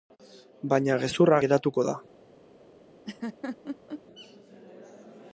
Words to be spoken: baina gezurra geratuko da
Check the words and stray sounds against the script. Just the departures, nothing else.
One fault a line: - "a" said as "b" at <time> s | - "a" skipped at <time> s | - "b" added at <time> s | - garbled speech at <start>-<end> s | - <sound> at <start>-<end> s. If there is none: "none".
- laugh at 3.0-4.0 s